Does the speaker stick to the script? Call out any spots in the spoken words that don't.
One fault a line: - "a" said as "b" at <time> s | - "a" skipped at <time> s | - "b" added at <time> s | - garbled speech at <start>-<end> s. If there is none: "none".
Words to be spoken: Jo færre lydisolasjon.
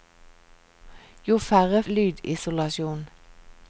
none